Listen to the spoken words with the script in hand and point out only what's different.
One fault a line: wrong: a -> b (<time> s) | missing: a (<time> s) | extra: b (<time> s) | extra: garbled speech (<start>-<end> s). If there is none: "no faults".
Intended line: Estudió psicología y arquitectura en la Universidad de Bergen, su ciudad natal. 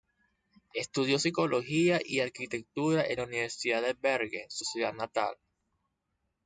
no faults